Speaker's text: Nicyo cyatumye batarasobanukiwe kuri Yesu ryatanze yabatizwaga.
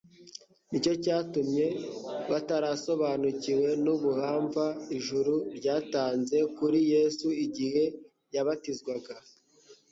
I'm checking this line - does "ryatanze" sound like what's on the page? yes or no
no